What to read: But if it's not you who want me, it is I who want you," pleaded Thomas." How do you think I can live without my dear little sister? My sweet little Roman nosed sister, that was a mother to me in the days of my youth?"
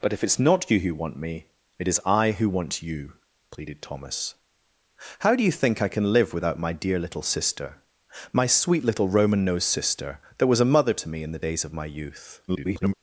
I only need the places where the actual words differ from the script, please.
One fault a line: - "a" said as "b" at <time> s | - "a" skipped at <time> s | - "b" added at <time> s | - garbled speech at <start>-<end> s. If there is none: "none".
- garbled speech at 12.5-12.9 s